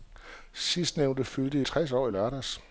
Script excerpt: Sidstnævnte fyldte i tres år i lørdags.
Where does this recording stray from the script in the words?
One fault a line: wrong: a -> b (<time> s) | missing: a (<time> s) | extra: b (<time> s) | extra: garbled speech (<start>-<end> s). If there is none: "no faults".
no faults